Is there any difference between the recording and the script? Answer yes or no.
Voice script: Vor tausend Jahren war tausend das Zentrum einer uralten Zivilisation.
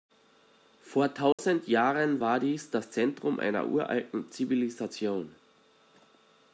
yes